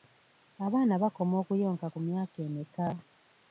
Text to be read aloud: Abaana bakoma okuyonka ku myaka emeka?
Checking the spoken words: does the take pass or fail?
pass